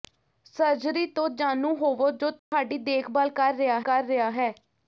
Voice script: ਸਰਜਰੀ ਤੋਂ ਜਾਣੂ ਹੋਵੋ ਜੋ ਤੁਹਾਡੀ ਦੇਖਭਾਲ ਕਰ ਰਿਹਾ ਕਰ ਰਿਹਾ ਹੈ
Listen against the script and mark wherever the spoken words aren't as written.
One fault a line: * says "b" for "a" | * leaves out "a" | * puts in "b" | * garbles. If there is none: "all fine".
all fine